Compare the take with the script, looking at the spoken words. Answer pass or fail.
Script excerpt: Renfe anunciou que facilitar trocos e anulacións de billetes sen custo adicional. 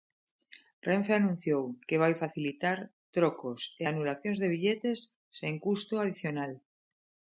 fail